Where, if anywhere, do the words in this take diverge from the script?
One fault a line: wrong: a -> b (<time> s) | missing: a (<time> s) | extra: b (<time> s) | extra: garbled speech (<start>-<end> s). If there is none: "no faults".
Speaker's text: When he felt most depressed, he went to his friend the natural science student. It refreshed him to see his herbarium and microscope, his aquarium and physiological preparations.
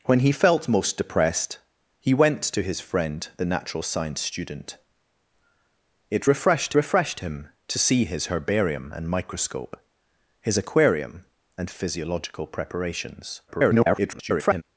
extra: refreshed (6.7 s)
extra: garbled speech (13.5-14.6 s)